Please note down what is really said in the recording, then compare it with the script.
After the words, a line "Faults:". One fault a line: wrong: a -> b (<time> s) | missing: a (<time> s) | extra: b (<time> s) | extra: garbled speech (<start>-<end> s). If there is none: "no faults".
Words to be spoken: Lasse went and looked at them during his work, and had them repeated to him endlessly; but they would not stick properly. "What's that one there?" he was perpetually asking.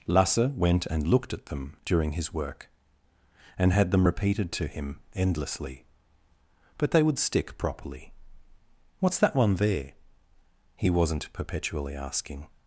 Lasse went and looked at them during his work, and had them repeated to him endlessly; but they would stick properly. "What's that one there?" he wasn't perpetually asking.
Faults:
missing: not (7.2 s)
wrong: was -> wasn't (10.9 s)